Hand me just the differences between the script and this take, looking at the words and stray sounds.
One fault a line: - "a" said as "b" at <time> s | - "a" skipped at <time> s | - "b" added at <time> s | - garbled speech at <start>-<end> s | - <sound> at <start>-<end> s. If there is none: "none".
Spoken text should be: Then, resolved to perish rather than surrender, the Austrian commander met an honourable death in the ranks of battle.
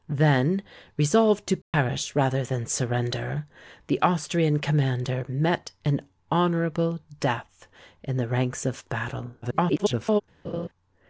- dropout at 1.6-1.7 s
- garbled speech at 9.4-10.2 s
- laugh at 10.4-10.7 s